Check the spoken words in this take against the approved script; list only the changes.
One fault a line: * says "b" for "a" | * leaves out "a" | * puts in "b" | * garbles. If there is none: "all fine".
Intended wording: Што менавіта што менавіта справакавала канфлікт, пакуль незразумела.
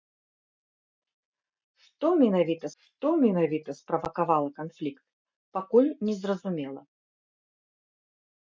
all fine